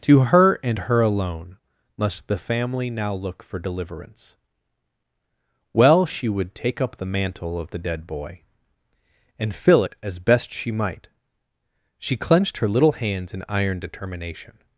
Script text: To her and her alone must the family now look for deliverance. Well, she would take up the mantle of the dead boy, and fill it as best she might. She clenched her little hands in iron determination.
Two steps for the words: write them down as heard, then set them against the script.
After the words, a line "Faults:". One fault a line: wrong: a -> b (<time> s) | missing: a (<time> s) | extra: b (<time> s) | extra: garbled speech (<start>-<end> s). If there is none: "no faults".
To her and her alone must the family now look for deliverance. Well, she would take up the mantle of the dead boy, and fill it as best she might. She clenched her little hands in iron determination.
Faults:
no faults